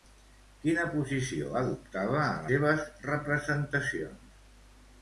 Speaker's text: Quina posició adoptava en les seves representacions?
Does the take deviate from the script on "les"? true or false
true